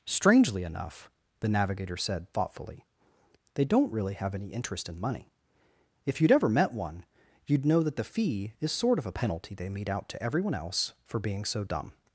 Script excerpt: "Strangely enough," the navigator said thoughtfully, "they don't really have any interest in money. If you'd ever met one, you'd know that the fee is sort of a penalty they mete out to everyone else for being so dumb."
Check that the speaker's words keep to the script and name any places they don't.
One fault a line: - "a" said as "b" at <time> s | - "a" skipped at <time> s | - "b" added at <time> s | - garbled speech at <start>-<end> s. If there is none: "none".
none